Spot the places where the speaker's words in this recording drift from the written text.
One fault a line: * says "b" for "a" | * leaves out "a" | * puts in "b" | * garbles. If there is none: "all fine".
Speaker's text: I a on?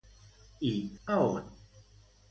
all fine